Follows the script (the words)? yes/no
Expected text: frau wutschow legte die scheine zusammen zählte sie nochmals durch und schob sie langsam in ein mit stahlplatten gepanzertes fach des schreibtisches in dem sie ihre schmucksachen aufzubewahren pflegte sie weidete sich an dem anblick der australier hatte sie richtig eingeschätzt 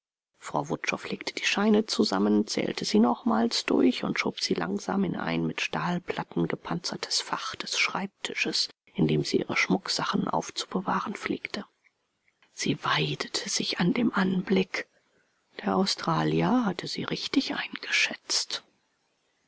yes